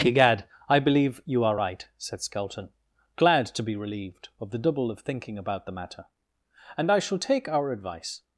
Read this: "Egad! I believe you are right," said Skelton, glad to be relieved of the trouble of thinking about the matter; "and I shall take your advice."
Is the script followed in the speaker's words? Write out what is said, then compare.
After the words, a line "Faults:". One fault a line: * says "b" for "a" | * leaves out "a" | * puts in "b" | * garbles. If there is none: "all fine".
"Egad! I believe you are right," said Skelton, glad to be relieved of the double of thinking about the matter; "and I shall take our advice."
Faults:
* says "double" for "trouble"
* says "our" for "your"